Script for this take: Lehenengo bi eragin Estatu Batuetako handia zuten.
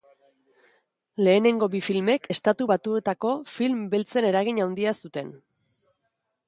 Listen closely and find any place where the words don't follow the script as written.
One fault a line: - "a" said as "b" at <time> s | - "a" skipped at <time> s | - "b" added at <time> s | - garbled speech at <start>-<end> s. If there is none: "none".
- "eragin" said as "filmek" at 1.9 s
- "film beltzen eragin" added at 3.5 s